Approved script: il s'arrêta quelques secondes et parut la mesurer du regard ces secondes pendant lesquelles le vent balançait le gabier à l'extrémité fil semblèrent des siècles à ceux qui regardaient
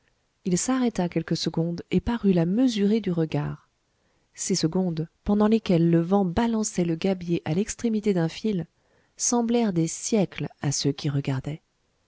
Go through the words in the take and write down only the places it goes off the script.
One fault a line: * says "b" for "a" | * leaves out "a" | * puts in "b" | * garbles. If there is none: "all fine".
* puts in "d'un"